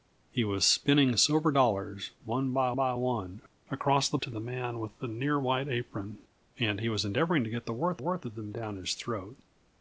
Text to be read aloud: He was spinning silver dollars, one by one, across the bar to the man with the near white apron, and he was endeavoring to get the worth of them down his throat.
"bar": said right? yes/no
no